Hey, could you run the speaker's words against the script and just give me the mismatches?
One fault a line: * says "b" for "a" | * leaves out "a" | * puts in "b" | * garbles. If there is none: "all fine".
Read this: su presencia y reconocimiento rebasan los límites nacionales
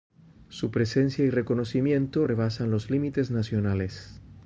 all fine